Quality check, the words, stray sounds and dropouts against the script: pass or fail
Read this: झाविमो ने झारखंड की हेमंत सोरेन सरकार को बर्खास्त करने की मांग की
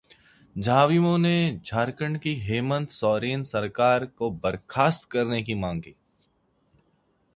pass